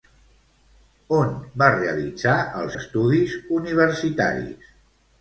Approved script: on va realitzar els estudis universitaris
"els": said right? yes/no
yes